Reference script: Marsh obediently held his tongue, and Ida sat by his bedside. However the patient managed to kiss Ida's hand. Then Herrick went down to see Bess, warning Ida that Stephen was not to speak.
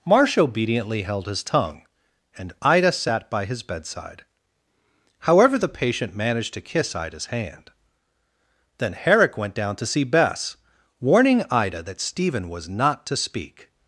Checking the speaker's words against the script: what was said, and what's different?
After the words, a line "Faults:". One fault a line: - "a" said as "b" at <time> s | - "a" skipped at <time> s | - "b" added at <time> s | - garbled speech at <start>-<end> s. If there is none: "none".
Marsh obediently held his tongue, and Ida sat by his bedside. However the patient managed to kiss Ida's hand. Then Herrick went down to see Bess, warning Ida that Stephen was not to speak.
Faults:
none